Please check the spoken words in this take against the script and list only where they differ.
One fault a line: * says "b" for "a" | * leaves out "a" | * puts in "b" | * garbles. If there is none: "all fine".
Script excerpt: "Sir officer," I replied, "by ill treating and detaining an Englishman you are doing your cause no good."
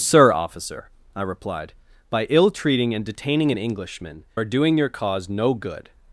* leaves out "you"